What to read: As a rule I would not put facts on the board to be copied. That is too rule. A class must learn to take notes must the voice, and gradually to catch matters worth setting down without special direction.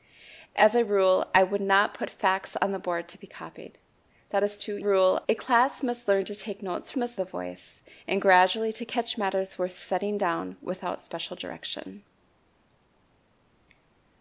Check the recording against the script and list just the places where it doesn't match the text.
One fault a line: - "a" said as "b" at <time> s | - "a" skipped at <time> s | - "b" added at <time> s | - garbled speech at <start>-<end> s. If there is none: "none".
none